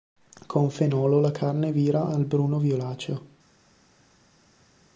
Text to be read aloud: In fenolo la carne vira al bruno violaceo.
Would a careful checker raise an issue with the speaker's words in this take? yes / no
yes